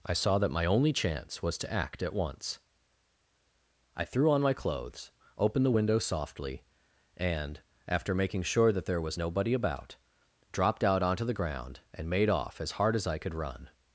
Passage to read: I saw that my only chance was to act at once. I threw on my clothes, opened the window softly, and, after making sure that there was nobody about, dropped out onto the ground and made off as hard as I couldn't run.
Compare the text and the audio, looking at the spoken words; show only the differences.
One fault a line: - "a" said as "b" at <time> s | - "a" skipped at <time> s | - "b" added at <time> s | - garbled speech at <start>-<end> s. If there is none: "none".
- "couldn't" said as "could" at 13.2 s